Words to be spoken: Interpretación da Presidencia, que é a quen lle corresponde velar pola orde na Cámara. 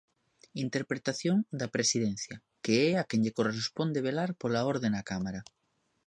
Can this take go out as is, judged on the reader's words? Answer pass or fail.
pass